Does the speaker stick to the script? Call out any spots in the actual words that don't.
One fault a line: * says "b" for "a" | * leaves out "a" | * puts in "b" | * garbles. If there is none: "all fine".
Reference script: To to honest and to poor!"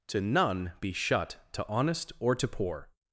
* puts in "none be shut"
* says "or" for "and"